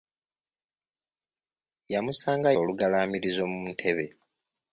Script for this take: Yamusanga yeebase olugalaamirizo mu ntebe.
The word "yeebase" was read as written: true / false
false